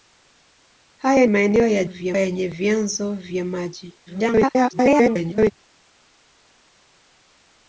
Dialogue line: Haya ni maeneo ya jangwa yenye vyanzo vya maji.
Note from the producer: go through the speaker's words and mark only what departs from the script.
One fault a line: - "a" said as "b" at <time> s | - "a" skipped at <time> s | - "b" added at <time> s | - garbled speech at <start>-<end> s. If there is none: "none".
- "ni" skipped at 1.2 s
- "jangwa" said as "vya" at 1.8 s
- garbled speech at 4.1-5.5 s